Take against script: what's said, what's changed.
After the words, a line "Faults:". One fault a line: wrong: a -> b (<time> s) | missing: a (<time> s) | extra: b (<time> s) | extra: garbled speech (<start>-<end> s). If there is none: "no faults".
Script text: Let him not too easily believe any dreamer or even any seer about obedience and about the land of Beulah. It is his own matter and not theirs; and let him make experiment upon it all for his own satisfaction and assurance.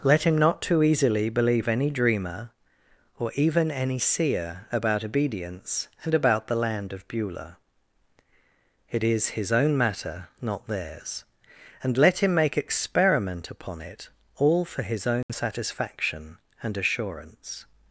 Let him not too easily believe any dreamer or even any seer about obedience and about the land of Beulah. It is his own matter not theirs; and let him make experiment upon it all for his own satisfaction and assurance.
Faults:
missing: and (10.3 s)